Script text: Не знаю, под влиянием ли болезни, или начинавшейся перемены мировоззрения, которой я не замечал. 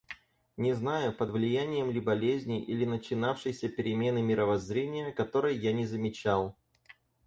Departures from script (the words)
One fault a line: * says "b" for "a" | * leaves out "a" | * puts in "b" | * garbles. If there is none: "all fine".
all fine